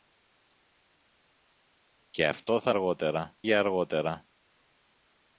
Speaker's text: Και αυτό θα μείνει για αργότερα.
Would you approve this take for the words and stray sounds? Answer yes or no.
no